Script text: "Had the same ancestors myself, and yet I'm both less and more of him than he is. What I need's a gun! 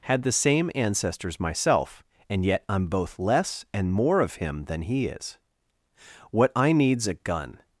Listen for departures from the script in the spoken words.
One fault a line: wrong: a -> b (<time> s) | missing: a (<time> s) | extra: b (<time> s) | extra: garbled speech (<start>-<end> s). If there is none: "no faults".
no faults